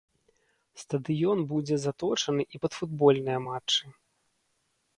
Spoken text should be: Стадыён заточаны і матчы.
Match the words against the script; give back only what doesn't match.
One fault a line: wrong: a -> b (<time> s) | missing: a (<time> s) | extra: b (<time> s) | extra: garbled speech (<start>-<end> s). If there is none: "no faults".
extra: будзе (1.5 s)
extra: пад футбольныя (2.6 s)